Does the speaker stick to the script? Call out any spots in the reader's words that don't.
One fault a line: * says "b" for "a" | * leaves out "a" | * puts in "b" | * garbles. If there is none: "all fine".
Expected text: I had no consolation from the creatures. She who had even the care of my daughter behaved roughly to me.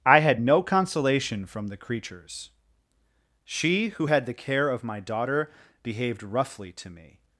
* leaves out "even"